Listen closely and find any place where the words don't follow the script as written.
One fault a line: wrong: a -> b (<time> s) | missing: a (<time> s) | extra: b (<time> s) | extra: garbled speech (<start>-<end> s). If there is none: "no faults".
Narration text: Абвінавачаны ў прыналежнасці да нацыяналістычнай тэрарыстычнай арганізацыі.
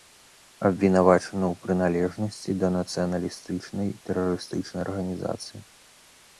no faults